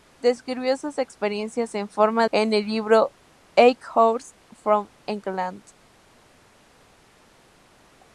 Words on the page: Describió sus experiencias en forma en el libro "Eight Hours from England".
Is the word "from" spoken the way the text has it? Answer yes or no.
yes